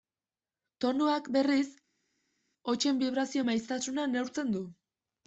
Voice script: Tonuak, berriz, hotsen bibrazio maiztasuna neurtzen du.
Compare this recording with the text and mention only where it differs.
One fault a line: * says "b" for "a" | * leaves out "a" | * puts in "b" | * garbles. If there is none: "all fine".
all fine